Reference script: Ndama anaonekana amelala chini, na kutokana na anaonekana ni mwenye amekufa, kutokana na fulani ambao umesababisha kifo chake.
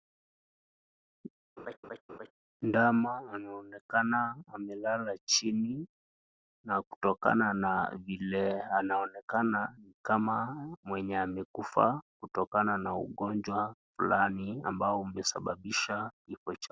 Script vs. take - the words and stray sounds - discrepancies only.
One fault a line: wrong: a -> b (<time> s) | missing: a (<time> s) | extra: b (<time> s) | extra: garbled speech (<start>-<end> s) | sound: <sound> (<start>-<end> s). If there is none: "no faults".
sound: laugh (1.6-2.3 s)
extra: vile (8.0 s)
extra: kama (10.0 s)
extra: ugonjwa (12.9 s)